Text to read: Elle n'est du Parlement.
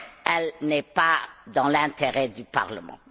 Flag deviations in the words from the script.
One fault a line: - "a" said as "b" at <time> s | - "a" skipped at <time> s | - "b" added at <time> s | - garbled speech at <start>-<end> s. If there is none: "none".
- "pas dans l'intérêt" added at 0.8 s